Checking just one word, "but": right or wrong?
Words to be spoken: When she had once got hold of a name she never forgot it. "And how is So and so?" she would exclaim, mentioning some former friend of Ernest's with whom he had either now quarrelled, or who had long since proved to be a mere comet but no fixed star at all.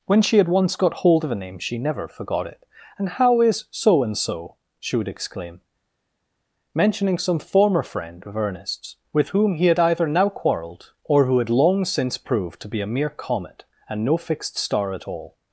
wrong